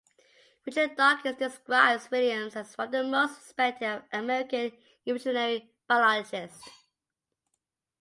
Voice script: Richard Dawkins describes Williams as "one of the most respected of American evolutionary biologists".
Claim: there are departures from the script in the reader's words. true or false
false